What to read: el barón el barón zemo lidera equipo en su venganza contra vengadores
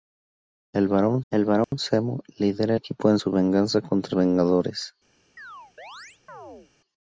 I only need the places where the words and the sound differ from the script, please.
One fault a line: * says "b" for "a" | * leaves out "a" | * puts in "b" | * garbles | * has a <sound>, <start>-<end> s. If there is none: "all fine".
* has a dropout, 1.6-1.7 s
* has a chirp, 5.4-6.7 s